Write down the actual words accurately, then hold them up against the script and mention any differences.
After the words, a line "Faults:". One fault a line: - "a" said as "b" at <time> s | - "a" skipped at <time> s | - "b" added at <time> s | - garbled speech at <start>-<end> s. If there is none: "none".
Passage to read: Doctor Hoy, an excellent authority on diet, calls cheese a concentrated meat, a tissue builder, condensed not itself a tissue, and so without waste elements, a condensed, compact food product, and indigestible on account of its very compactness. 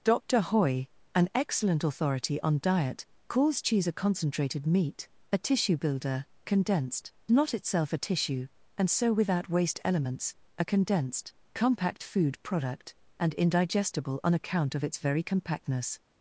Doctor Hoy, an excellent authority on diet, calls cheese a concentrated meat, a tissue builder, condensed not itself a tissue, and so without waste elements, a condensed, compact food product, and indigestible on account of its very compactness.
Faults:
none